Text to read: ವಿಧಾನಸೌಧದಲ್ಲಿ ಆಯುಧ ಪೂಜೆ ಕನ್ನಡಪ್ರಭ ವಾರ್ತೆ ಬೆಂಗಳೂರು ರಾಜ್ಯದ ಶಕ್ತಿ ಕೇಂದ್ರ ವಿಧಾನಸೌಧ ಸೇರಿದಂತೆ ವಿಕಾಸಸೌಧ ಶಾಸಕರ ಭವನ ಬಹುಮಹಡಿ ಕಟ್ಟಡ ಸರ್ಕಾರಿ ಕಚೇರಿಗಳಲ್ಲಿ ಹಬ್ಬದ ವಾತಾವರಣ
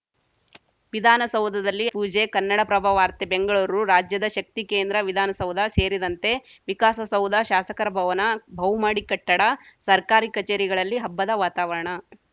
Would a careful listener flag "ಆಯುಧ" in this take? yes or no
yes